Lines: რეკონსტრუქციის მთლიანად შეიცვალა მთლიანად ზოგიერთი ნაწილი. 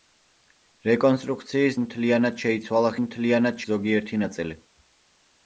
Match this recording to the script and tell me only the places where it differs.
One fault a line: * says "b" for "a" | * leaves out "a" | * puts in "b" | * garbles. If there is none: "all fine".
all fine